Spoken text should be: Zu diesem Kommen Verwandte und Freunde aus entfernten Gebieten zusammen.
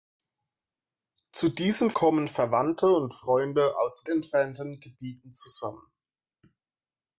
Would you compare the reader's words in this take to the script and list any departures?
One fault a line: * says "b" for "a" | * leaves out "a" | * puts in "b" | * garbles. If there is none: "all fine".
all fine